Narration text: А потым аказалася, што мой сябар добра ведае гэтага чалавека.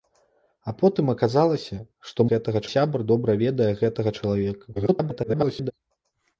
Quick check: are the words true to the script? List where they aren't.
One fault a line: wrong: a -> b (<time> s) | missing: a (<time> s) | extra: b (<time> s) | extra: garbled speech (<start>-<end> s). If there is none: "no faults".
wrong: мой -> гэтага (2.3 s)
extra: garbled speech (4.8-5.7 s)